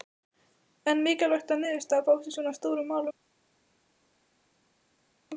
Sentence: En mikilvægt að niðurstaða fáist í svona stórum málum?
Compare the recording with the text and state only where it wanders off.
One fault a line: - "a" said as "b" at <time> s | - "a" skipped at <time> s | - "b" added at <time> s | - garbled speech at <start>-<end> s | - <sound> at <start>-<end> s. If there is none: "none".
none